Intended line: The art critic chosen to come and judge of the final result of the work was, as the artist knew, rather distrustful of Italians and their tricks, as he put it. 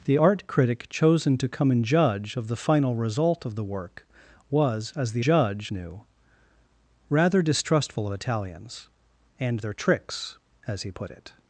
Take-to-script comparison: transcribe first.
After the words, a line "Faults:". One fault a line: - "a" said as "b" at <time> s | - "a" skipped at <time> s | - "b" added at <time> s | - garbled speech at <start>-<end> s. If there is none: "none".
The art critic chosen to come and judge of the final result of the work was, as the judge knew, rather distrustful of Italians and their tricks, as he put it.
Faults:
- "artist" said as "judge" at 5.2 s